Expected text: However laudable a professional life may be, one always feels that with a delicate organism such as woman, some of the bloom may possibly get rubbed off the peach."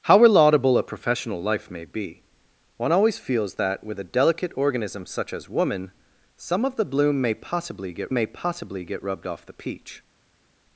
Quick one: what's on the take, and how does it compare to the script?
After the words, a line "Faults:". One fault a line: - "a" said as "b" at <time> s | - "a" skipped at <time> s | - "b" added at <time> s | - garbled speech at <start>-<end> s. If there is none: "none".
However laudable a professional life may be, one always feels that with a delicate organism such as woman, some of the bloom may possibly get may possibly get rubbed off the peach."
Faults:
- "may possibly get" added at 8.1 s